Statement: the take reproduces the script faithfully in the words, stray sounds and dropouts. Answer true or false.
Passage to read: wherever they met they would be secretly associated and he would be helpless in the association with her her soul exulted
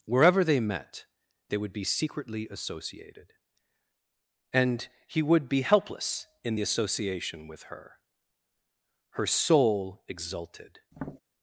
false